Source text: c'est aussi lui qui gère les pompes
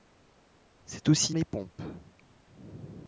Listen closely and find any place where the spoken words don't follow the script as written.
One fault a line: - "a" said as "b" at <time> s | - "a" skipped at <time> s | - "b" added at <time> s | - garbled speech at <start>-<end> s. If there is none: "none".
- "lui qui gère" skipped at 1.3 s